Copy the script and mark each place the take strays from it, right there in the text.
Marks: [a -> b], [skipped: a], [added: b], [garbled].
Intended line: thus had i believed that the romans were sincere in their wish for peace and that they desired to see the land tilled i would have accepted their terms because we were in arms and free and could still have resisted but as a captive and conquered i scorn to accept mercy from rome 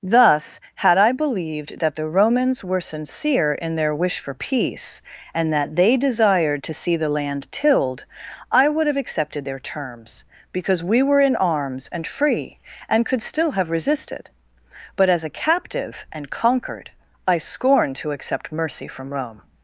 thus had i believed that the romans were sincere in their wish for peace and that they desired to see the land tilled i would have accepted their terms because we were in arms and free and could still have resisted but as a captive and conquered i scorn to accept mercy from rome